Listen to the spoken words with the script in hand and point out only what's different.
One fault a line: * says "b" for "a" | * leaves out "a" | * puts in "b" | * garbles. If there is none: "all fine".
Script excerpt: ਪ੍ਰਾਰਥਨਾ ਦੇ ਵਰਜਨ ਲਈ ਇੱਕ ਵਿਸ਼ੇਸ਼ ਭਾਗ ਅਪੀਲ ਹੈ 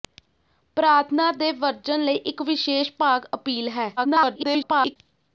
* garbles